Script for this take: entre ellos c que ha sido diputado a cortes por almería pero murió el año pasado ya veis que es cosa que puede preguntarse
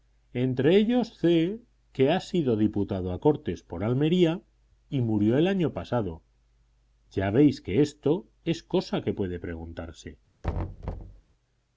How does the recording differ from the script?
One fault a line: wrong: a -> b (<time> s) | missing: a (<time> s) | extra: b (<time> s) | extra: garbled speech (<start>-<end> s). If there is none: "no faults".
wrong: pero -> y (4.9 s)
extra: esto (7.8 s)